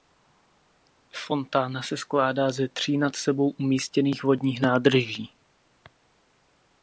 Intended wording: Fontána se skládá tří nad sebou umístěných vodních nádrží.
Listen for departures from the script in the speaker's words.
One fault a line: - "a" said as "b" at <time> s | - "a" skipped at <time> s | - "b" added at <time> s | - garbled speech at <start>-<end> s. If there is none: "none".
- "ze" added at 2.5 s